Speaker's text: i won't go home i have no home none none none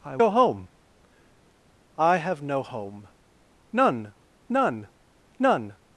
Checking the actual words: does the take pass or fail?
fail